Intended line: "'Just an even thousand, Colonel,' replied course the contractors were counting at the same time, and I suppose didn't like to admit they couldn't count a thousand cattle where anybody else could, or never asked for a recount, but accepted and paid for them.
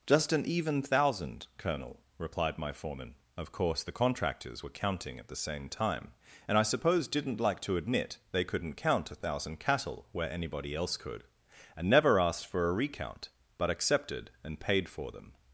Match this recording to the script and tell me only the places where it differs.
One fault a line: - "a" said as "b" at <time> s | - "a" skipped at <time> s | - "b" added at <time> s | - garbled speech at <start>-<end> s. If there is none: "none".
- "my foreman Of" added at 2.6 s
- "or" said as "and" at 11.8 s